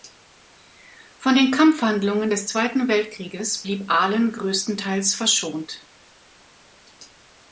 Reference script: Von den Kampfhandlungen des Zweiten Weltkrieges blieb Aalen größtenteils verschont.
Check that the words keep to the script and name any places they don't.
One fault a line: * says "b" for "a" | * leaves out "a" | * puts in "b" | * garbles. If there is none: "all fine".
all fine